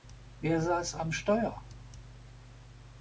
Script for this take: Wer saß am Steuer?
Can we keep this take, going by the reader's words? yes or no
yes